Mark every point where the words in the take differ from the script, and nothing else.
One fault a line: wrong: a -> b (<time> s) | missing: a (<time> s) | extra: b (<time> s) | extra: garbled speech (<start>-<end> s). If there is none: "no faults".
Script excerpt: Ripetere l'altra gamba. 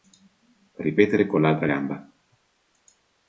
extra: con (1.3 s)